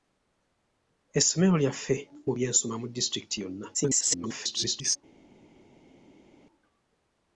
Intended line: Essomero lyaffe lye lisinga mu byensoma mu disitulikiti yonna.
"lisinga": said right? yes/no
no